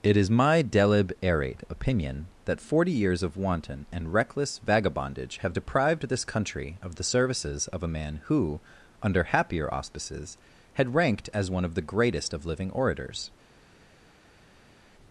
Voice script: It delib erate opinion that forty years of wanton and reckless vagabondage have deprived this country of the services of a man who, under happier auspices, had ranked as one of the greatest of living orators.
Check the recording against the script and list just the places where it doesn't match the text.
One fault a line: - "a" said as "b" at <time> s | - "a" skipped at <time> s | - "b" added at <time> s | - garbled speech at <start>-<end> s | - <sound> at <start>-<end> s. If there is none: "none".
- "is my" added at 0.2 s